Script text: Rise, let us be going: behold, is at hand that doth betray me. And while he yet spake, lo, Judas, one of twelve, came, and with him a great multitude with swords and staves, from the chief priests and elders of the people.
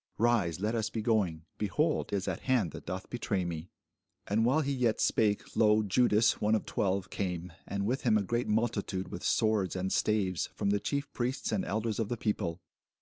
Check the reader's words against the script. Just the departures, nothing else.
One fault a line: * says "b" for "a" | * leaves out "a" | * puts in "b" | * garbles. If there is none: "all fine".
all fine